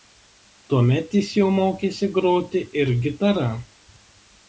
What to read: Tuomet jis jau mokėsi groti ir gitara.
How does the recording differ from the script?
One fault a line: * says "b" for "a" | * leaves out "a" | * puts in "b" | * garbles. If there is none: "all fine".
all fine